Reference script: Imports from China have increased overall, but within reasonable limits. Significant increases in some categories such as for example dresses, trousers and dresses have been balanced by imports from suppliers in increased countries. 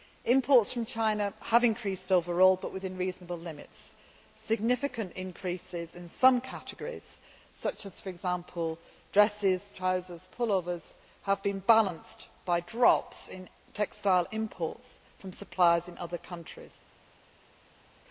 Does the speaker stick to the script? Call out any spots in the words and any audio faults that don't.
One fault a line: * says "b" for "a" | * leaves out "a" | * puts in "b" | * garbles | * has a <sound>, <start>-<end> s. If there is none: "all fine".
* says "pullovers" for "dresses"
* puts in "drops in textile"
* says "other" for "increased"